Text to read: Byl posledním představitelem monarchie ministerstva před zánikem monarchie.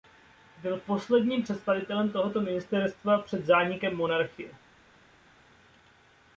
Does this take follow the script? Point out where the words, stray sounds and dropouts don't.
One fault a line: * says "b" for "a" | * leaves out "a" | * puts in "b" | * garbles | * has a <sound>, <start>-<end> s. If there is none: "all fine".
* says "tohoto" for "monarchie"